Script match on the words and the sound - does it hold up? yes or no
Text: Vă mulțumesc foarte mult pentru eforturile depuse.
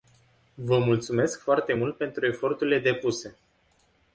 yes